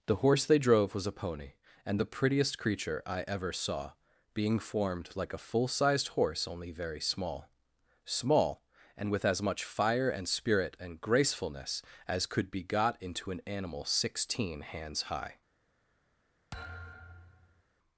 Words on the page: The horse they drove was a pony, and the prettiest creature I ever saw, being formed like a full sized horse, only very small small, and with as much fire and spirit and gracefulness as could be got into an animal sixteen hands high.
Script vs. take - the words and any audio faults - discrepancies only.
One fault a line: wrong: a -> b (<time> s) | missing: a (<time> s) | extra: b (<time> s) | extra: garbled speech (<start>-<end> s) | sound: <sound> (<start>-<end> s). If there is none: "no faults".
sound: thud (16.5-17.6 s)